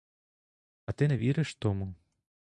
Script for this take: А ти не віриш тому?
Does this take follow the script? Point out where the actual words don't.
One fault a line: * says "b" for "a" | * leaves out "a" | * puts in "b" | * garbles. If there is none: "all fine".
all fine